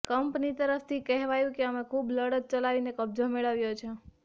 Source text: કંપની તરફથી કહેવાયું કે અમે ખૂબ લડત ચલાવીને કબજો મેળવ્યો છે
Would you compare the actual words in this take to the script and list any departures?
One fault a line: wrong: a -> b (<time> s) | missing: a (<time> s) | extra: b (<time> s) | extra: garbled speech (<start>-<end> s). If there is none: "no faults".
no faults